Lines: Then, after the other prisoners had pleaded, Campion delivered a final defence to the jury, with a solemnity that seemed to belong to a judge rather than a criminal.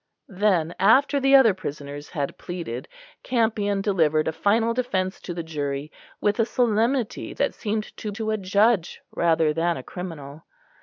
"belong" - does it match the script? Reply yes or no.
no